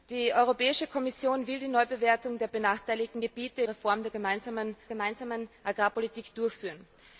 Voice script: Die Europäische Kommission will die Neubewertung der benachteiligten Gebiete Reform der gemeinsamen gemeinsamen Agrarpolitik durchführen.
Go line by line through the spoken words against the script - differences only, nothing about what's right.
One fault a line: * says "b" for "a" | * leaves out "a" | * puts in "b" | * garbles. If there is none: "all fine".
all fine